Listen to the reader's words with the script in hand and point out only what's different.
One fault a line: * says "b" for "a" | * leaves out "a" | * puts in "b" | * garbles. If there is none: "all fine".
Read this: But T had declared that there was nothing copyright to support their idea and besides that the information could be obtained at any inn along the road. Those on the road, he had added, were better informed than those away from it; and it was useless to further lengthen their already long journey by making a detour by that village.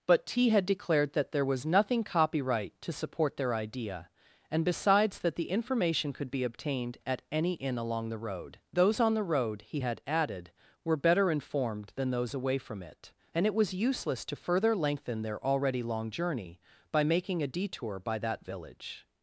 all fine